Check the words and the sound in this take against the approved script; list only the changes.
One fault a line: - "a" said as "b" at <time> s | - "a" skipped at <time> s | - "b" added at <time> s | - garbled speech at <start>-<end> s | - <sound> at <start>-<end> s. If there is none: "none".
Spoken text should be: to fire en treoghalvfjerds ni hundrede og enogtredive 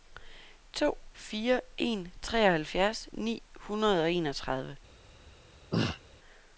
- throat clearing at 5.7-6.0 s